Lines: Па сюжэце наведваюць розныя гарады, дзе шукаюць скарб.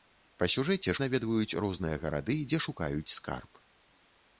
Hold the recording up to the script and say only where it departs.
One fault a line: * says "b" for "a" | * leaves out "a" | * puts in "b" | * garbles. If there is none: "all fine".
all fine